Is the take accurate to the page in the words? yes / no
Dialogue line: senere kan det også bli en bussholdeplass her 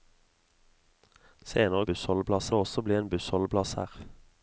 no